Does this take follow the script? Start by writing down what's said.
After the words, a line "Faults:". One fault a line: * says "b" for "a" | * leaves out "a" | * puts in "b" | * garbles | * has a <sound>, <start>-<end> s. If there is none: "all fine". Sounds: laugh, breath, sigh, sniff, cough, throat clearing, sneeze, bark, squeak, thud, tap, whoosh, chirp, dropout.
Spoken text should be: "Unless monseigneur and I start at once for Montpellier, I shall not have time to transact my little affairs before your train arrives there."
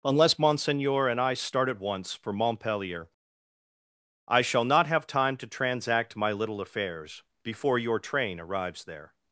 "Unless monseigneur and I start at once for Montpellier, I shall not have time to transact my little affairs before your train arrives there."
Faults:
all fine